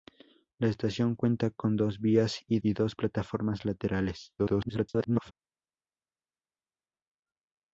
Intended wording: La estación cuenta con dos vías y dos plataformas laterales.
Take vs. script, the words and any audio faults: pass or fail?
fail